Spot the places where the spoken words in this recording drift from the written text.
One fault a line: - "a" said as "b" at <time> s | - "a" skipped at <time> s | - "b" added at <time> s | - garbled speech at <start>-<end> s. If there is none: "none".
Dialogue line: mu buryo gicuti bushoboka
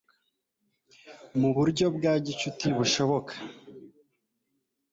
- "bwa" added at 2.0 s